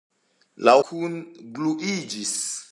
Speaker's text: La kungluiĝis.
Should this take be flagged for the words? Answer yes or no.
no